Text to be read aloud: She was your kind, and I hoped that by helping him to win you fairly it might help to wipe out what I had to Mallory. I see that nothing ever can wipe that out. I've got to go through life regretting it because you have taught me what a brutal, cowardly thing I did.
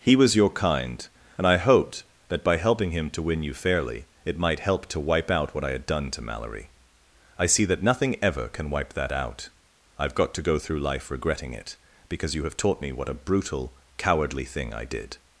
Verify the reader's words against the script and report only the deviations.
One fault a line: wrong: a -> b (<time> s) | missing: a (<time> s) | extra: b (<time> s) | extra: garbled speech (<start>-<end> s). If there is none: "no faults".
wrong: She -> He (0.0 s)
extra: done (5.8 s)